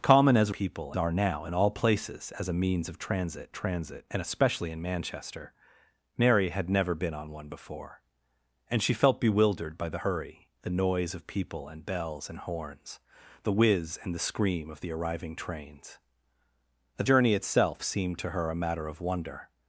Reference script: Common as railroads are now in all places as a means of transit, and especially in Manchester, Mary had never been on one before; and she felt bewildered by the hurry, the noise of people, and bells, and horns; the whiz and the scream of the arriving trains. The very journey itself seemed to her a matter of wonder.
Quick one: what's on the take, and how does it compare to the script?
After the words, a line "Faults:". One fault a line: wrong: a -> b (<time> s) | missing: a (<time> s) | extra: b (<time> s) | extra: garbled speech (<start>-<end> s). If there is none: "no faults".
Common as people are now in all places as a means of transit transit, and especially in Manchester, Mary had never been on one before; and she felt bewildered by the hurry, the noise of people, and bells, and horns; the whiz and the scream of the arriving trains. The journey itself seemed to her a matter of wonder.
Faults:
wrong: railroads -> people (0.5 s)
extra: transit (3.5 s)
missing: very (17.0 s)